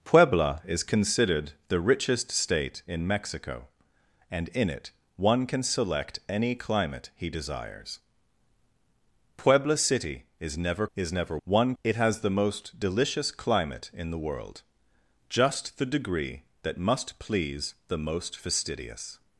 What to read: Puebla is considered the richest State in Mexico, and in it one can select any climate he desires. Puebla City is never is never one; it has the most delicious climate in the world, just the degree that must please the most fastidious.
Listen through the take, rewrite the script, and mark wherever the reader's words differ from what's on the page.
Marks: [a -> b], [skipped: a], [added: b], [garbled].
Puebla is considered the richest State in Mexico, and in it one can select any climate he desires. Puebla City is never is never one; it has the most delicious climate in the world, just the degree that must please the most fastidious.